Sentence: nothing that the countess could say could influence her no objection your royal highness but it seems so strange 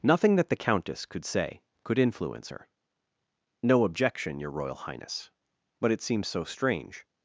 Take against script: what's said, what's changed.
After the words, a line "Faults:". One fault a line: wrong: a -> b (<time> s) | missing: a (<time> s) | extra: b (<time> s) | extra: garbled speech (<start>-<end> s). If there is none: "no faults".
nothing that the countess could say could influence her no objection your royal highness but it seems so strange
Faults:
no faults